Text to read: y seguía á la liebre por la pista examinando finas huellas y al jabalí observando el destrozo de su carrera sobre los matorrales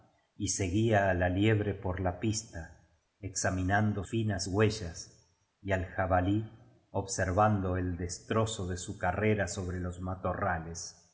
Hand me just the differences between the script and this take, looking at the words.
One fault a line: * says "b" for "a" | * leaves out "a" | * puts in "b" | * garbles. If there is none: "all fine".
all fine